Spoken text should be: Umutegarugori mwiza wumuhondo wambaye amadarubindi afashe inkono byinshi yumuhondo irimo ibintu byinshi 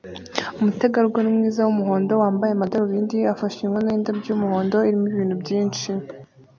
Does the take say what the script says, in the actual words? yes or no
no